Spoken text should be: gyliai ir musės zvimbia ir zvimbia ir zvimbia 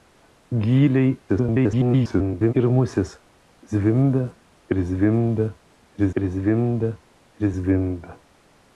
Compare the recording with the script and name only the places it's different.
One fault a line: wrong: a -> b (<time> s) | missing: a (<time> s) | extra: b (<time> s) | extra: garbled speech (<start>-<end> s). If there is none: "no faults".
extra: garbled speech (1.3-2.5 s)
extra: ir zvimbia ir (6.2 s)